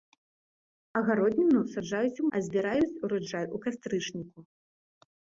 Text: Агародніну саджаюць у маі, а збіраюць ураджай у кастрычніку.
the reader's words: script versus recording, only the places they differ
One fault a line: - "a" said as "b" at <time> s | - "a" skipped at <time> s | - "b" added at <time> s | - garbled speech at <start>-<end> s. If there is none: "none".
- "маі" skipped at 2.3 s